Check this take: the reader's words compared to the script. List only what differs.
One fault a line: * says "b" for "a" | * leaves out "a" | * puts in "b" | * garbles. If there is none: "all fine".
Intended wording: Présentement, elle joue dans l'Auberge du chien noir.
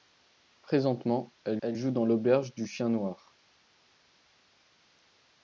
* puts in "elle"